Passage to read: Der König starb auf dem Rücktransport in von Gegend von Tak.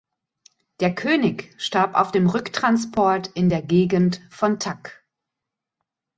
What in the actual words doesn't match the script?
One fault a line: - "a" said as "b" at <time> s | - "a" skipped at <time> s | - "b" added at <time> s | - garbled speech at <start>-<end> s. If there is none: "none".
- "von" said as "der" at 3.5 s